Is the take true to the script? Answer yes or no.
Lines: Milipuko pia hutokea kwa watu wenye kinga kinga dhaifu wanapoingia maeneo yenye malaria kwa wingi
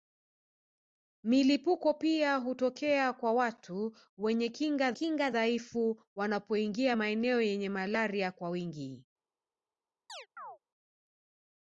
yes